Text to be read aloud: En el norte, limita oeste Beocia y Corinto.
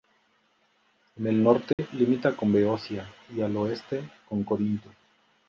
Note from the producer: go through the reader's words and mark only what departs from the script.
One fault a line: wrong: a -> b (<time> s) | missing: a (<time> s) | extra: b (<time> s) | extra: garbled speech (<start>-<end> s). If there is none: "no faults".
wrong: oeste -> con (2.4 s)
extra: al oeste con (3.4 s)